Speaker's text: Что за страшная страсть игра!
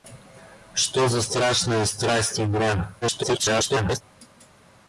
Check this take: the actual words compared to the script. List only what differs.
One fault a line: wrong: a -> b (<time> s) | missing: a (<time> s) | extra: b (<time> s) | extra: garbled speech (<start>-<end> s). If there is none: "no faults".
extra: garbled speech (3.0-4.0 s)